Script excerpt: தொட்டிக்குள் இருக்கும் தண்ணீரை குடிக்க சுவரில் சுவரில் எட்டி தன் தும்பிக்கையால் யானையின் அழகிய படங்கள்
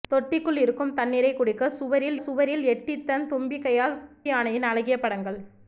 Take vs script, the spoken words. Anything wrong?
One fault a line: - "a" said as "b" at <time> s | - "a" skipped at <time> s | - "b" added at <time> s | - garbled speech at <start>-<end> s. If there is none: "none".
none